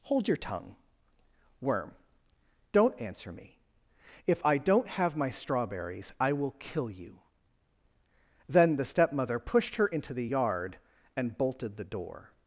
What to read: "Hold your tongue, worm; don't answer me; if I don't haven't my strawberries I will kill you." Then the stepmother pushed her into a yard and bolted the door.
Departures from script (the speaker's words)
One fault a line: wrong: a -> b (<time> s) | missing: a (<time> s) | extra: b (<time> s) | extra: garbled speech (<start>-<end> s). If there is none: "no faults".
wrong: haven't -> have (4.9 s)
wrong: a -> the (10.1 s)